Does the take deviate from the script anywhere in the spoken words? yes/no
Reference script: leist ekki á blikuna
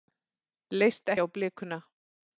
yes